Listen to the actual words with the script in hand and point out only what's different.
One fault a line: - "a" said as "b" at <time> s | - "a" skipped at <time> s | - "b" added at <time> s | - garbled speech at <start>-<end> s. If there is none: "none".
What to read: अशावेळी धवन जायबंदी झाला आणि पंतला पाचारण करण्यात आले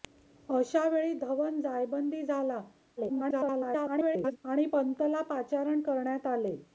- garbled speech at 3.0-4.4 s